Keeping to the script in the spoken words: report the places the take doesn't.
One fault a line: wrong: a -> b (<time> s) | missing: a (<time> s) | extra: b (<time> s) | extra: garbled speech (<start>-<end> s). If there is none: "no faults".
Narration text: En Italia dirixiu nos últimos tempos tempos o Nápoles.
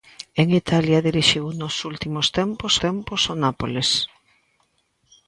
no faults